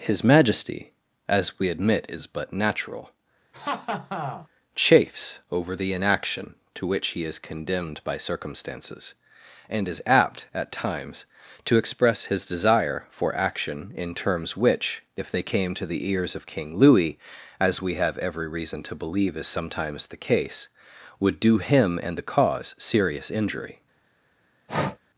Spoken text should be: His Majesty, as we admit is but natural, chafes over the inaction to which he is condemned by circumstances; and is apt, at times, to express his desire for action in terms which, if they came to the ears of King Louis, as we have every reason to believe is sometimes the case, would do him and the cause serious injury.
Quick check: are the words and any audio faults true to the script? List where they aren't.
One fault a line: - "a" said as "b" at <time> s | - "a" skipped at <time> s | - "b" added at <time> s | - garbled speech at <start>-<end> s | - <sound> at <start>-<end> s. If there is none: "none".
- laugh at 3.5-4.5 s
- breath at 24.7-25.0 s